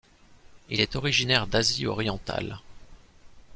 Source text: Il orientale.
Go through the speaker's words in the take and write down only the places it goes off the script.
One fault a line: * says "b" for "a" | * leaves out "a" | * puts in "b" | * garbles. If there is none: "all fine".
* puts in "est originaire d'Asie"